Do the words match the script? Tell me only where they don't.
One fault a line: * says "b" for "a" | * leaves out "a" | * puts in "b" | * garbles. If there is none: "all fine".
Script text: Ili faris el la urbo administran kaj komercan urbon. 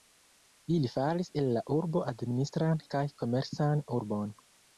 all fine